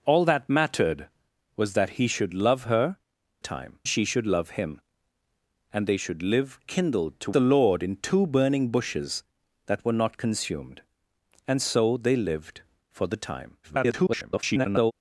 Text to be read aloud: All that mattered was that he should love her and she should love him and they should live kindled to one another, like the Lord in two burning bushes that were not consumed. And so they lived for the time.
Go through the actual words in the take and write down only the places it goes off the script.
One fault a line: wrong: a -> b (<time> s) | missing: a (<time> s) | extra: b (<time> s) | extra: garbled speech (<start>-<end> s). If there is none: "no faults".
wrong: and -> time (3.4 s)
missing: one another like (7.3 s)
extra: garbled speech (13.6-14.9 s)